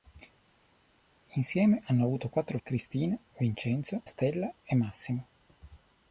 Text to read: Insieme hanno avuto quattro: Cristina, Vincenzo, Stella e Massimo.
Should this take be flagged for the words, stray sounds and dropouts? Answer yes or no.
no